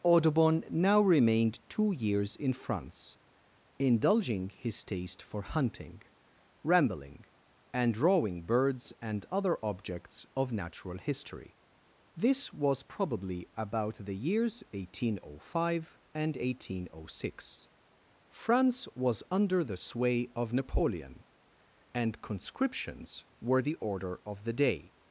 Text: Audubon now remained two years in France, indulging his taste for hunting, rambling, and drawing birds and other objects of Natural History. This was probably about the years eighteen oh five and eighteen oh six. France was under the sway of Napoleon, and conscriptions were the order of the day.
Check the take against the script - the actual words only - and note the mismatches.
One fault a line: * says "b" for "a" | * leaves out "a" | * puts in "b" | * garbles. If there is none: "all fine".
all fine